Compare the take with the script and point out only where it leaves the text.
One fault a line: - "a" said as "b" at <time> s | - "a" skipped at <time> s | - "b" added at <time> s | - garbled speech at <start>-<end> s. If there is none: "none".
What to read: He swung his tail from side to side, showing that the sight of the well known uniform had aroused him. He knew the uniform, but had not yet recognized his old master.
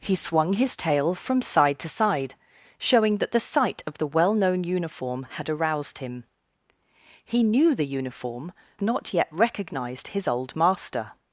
- "but had" skipped at 8.5 s